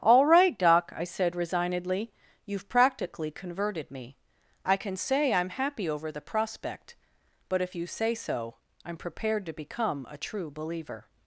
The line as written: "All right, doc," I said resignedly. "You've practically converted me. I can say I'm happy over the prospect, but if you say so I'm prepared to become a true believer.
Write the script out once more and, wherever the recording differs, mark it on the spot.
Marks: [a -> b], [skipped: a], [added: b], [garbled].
"All right, doc," I said resignedly. "You've practically converted me. I can say I'm happy over the prospect, but if you say so I'm prepared to become a true believer.